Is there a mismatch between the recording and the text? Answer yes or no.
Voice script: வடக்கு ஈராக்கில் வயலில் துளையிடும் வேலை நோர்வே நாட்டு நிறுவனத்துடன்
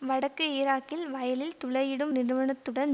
yes